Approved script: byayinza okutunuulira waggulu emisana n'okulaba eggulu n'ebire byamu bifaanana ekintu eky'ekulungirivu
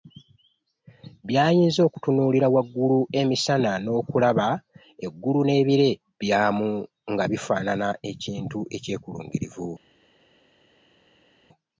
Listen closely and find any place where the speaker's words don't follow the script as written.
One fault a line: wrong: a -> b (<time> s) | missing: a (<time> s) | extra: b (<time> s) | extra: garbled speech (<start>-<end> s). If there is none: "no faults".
extra: nga (7.1 s)